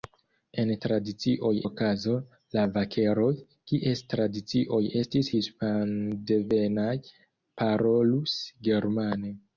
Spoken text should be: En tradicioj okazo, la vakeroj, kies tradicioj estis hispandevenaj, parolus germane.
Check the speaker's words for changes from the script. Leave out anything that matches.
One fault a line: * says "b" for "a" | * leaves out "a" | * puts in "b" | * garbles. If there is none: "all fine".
all fine